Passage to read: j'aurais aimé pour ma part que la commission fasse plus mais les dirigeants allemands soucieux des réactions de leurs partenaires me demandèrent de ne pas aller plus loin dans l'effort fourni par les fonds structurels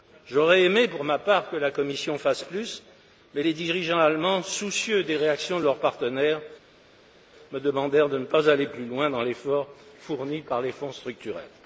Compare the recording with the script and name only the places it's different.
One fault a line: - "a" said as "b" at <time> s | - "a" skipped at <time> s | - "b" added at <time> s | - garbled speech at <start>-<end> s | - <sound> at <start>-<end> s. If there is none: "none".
none